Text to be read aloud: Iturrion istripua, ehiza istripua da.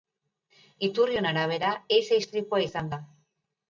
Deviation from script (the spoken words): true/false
true